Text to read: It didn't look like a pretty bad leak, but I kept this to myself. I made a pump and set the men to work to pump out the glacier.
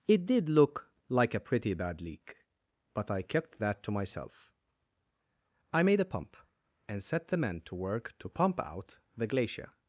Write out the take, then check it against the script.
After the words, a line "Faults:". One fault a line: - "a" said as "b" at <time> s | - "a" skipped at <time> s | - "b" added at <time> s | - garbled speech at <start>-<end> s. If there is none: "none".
It did look like a pretty bad leak, but I kept that to myself. I made a pump and set the men to work to pump out the glacier.
Faults:
- "didn't" said as "did" at 0.2 s
- "this" said as "that" at 3.6 s